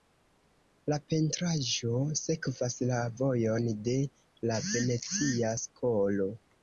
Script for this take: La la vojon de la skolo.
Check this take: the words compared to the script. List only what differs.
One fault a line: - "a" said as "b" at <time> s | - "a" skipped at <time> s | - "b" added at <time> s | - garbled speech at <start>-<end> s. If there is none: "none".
- "pentraĵo sekvas" added at 1.1 s
- "venecia" added at 4.7 s